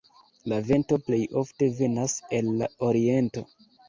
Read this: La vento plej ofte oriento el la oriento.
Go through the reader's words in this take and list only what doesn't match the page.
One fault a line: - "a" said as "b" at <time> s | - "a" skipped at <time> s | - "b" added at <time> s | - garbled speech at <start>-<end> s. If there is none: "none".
- "oriento" said as "venas" at 1.8 s